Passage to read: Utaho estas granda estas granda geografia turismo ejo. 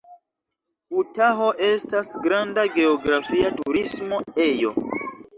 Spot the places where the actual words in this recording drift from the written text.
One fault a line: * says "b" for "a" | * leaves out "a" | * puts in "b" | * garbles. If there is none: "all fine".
* leaves out "estas granda"